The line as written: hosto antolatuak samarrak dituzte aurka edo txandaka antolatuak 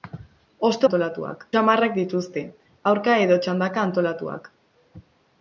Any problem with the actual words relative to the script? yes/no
no